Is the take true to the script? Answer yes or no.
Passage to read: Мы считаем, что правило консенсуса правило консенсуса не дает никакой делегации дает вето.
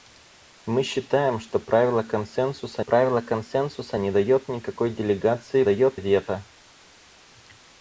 yes